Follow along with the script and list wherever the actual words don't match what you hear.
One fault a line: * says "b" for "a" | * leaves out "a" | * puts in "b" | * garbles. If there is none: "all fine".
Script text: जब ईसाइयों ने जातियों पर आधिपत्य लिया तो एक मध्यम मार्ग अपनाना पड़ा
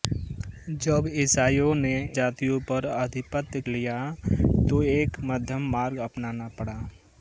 all fine